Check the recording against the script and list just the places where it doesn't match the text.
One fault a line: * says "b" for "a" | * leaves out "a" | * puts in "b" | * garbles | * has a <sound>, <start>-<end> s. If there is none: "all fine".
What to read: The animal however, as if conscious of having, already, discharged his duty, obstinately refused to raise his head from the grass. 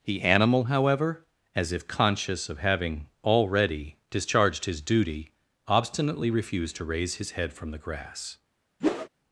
* has a whoosh, 8.8-9.1 s